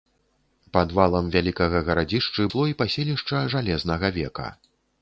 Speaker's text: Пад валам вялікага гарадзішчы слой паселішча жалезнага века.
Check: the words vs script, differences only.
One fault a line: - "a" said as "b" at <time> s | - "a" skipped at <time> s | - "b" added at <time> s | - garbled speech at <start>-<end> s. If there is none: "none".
none